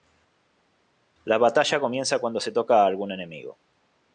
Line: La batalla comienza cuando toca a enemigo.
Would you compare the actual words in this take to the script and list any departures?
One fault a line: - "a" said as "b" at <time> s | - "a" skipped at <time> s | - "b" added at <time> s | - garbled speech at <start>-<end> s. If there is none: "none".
- "se" added at 2.4 s
- "algún" added at 2.9 s